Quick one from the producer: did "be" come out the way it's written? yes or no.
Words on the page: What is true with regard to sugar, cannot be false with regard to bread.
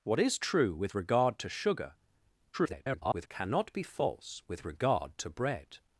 yes